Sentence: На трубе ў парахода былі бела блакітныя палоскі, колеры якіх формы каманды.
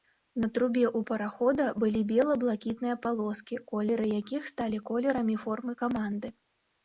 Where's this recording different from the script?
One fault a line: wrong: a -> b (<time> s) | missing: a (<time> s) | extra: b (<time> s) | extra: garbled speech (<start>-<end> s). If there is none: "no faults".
extra: сталі колерамі (4.5 s)